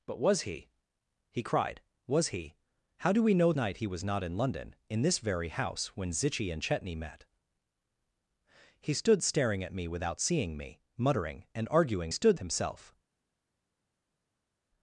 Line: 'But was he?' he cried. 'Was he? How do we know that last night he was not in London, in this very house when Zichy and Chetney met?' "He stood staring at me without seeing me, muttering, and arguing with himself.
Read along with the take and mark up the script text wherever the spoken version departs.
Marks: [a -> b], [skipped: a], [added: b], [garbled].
'But was he?' he cried. 'Was he? How do we know [skipped: that last] night he was not in London, in this very house when Zichy and Chetney met?' "He stood staring at me without seeing me, muttering, and arguing [with -> stood] himself.